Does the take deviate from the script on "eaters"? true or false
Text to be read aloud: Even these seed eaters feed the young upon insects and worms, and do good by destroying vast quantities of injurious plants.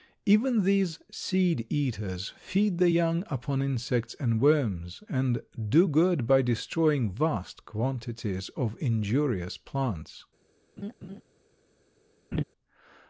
false